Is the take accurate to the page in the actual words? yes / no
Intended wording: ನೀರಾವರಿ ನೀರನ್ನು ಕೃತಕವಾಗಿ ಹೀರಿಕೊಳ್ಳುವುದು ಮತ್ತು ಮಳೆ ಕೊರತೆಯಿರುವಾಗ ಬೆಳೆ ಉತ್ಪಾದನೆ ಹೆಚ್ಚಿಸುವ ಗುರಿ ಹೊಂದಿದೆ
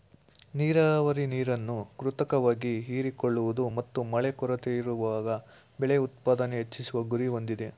yes